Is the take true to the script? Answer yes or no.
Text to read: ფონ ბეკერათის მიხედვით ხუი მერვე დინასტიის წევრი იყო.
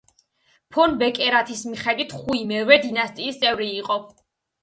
yes